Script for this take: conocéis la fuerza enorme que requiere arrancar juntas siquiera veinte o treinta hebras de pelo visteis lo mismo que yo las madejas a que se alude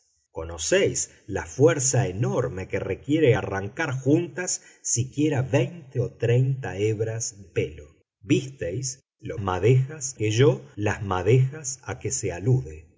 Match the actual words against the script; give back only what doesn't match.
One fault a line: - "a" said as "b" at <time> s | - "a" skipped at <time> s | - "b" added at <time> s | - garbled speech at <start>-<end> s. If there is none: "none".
- "de" skipped at 7.4 s
- "mismo" said as "madejas" at 9.4 s